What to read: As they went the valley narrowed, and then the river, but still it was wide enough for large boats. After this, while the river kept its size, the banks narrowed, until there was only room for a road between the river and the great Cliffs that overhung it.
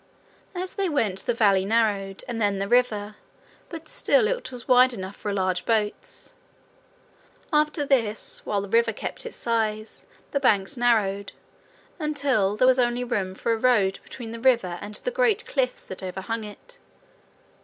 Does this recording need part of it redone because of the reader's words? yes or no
no